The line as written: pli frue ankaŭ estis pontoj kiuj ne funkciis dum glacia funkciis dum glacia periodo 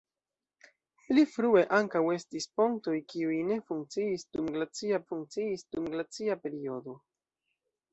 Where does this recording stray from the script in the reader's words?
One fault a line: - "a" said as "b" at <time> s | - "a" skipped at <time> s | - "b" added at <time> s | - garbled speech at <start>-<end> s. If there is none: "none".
none